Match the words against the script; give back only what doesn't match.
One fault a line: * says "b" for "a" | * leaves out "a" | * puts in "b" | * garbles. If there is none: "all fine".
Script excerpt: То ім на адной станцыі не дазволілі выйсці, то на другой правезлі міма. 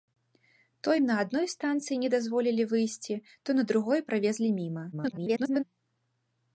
* garbles